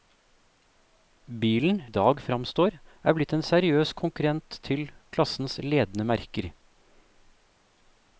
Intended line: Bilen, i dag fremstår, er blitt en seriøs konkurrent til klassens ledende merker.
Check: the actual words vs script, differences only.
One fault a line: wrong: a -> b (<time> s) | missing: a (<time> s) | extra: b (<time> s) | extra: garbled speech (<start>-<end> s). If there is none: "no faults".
no faults